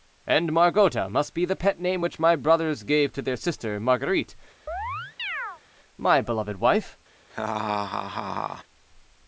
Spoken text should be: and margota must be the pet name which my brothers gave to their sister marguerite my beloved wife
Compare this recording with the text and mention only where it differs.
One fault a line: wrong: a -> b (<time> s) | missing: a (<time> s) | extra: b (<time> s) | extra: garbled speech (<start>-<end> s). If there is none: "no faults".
no faults